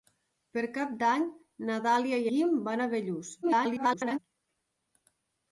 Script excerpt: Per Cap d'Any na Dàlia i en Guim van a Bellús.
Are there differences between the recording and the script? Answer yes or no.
yes